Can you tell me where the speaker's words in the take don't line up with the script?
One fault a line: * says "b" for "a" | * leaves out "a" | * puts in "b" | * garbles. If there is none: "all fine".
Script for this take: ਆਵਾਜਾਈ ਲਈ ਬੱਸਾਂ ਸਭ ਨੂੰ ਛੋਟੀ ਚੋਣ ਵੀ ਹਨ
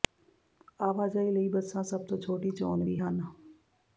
* says "ਤੋਂ" for "ਨੂੰ"